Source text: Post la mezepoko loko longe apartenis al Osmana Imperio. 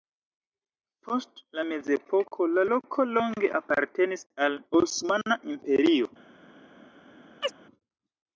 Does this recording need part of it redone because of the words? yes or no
yes